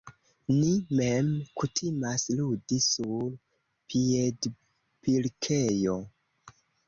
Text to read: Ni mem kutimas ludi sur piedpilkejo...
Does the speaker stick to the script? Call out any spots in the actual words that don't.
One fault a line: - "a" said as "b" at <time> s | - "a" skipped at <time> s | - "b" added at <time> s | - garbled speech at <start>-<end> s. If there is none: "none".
none